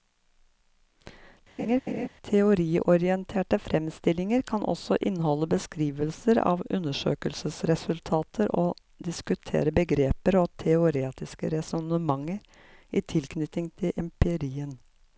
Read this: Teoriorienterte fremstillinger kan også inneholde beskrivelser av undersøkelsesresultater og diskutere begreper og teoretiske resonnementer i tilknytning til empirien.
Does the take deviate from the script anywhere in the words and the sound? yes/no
yes